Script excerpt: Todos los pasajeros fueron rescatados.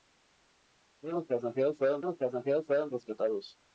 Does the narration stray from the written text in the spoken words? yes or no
yes